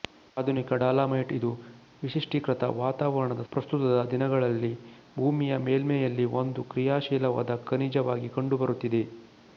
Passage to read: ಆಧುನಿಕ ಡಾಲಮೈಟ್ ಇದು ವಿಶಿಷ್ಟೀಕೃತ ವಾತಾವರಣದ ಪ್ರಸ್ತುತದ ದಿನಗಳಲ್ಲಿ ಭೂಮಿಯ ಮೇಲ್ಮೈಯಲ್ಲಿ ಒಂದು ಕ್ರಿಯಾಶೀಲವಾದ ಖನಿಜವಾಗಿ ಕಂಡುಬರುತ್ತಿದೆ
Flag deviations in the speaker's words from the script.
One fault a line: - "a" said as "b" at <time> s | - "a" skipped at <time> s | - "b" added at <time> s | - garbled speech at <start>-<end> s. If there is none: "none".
none